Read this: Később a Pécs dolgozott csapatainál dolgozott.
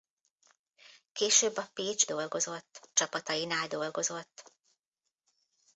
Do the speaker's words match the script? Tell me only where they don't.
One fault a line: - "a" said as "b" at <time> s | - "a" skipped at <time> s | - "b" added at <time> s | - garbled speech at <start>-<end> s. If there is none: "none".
none